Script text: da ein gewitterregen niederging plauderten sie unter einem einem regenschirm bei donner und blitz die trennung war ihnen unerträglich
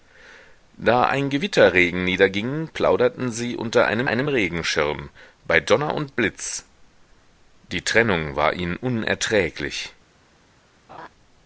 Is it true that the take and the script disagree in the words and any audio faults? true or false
true